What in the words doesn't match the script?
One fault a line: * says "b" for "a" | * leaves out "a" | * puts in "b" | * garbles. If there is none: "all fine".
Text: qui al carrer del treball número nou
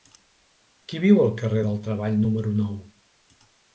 * puts in "viu"